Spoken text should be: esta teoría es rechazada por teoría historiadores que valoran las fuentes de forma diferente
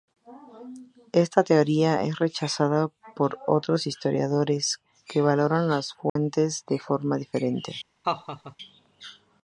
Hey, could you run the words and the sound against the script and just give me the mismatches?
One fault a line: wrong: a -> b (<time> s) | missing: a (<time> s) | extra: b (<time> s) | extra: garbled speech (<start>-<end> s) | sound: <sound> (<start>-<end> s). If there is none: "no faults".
wrong: teoría -> otros (3.5 s)
sound: dropout (6.1-6.2 s)
sound: laugh (8.0-8.6 s)